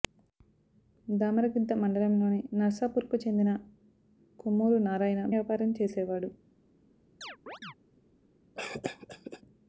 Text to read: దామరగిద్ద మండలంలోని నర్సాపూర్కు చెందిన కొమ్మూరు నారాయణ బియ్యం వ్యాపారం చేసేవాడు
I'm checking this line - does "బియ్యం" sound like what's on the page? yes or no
no